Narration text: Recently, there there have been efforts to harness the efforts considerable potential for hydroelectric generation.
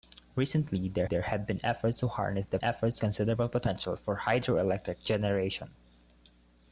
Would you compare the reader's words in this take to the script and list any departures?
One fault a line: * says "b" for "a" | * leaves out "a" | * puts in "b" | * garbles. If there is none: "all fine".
all fine